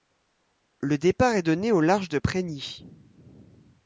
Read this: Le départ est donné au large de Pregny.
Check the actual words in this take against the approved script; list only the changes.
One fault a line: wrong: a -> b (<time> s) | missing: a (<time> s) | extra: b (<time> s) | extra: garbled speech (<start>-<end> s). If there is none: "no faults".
no faults